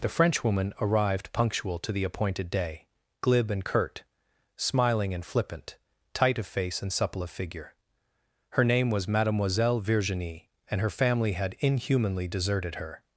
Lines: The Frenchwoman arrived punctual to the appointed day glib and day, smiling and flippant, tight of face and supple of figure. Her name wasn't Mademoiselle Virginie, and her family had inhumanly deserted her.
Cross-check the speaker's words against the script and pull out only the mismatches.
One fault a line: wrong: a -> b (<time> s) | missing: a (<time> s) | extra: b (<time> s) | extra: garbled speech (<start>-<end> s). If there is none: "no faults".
wrong: day -> curt (3.6 s)
wrong: wasn't -> was (8.9 s)